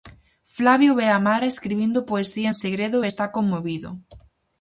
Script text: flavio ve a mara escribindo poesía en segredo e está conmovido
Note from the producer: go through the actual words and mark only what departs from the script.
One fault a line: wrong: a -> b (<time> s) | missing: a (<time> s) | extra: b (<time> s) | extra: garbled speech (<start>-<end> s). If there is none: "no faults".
no faults